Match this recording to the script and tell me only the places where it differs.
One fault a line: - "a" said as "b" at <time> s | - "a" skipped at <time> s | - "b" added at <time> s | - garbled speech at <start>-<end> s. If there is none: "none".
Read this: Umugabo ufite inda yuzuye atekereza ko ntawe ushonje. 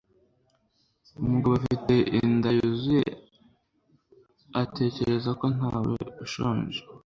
none